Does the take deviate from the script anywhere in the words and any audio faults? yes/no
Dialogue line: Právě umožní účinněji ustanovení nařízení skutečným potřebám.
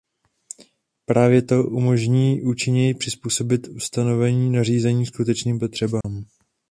yes